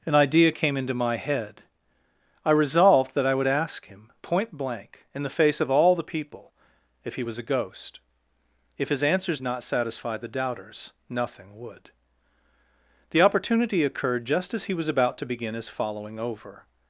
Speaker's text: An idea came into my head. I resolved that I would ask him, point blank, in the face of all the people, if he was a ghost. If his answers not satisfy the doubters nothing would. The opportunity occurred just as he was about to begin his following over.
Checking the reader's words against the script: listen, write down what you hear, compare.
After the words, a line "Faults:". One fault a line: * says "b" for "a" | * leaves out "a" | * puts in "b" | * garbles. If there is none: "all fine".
An idea came into my head. I resolved that I would ask him, point blank, in the face of all the people, if he was a ghost. If his answers not satisfy the doubters nothing would. The opportunity occurred just as he was about to begin his following over.
Faults:
all fine